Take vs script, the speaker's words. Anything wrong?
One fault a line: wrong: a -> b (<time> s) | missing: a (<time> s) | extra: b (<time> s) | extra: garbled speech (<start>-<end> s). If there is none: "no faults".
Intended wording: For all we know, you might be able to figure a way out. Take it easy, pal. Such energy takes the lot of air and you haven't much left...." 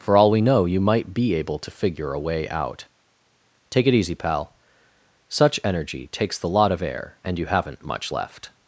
no faults